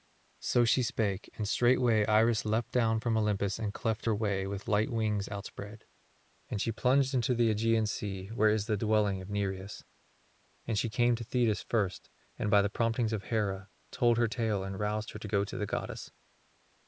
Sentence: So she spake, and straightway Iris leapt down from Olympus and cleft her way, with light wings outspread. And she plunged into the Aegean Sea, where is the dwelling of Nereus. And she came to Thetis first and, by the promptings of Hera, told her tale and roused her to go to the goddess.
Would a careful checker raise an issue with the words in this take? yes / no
no